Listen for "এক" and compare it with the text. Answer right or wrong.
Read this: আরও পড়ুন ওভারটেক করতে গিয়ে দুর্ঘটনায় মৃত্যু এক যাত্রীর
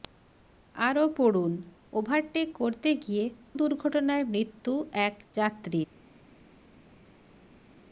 right